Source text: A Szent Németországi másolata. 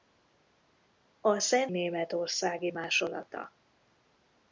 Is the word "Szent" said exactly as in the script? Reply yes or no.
yes